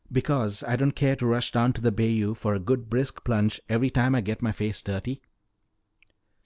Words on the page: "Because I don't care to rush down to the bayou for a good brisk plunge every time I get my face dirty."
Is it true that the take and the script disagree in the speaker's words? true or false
false